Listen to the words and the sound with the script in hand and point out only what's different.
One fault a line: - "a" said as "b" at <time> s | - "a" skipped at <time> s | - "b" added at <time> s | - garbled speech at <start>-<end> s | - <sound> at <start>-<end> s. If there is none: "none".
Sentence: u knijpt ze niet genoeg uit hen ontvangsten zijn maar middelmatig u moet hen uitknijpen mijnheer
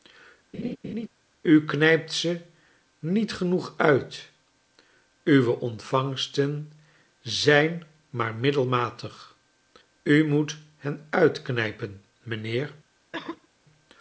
- laugh at 0.5-1.1 s
- "hen" said as "uwe" at 5.2 s
- cough at 13.1-13.5 s